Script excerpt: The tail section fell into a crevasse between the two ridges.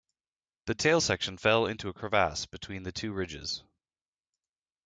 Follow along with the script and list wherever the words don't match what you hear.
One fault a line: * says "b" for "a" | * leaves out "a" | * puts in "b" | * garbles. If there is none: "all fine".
all fine